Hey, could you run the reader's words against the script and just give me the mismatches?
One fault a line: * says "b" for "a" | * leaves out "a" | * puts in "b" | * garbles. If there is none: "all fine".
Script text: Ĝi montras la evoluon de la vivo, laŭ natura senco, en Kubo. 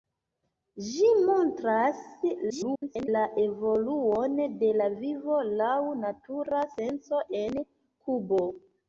* garbles